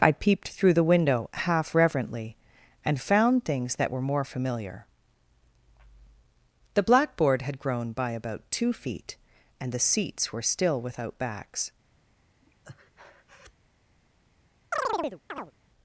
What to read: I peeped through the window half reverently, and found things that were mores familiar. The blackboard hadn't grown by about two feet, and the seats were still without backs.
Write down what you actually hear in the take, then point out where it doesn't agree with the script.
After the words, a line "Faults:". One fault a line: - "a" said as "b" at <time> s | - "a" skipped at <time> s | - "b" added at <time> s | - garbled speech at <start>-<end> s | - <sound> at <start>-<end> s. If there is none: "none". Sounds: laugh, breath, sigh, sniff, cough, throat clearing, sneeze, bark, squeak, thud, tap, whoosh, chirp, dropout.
I peeped through the window half reverently, and found things that were more familiar. The blackboard had grown by about two feet, and the seats were still without backs.
Faults:
- "mores" said as "more" at 4.0 s
- "hadn't" said as "had" at 7.4 s
- breath at 12.4-13.5 s
- chirp at 14.7-15.5 s